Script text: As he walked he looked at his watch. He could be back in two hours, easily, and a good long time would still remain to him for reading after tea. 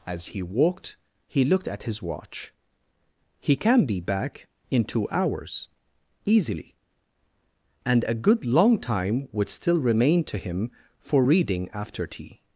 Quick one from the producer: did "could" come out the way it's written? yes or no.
no